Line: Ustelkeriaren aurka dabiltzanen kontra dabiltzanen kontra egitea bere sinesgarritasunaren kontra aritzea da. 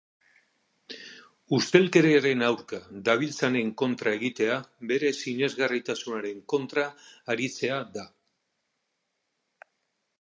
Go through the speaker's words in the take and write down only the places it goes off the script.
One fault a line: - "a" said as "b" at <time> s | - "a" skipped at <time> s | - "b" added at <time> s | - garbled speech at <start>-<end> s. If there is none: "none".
- "dabiltzanen kontra" skipped at 4.1 s